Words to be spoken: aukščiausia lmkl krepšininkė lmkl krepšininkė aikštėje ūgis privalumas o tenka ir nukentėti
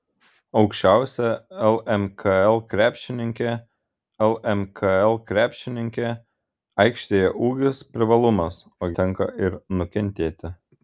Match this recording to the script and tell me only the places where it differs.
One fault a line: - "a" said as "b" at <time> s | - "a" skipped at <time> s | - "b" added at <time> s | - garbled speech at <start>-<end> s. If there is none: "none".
none